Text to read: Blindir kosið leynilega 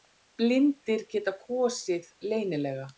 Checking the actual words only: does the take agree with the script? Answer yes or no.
no